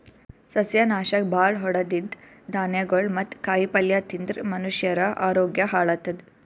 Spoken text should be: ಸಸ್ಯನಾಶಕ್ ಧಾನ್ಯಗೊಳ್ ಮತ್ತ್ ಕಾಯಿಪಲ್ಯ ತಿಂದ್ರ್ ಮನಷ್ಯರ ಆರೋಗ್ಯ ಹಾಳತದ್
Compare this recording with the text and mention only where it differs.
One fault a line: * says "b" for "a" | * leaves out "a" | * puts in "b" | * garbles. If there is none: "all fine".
* puts in "ಭಾಳ್ ಹೊಡದಿದ್ದ್"